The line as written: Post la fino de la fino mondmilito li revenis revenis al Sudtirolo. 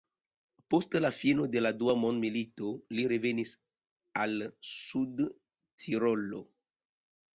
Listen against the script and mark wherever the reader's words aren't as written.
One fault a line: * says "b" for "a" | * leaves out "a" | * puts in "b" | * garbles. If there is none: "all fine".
* says "dua" for "fino"
* leaves out "revenis"